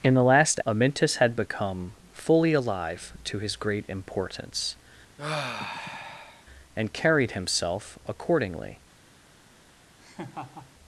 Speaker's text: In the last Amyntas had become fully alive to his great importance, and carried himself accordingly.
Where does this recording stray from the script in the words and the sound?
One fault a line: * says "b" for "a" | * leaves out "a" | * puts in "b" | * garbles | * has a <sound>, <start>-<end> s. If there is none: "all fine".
* has a sigh, 5.2-6.4 s
* has a laugh, 10.0-10.7 s